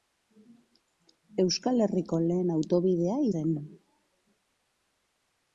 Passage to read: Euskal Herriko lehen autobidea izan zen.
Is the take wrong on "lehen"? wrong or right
right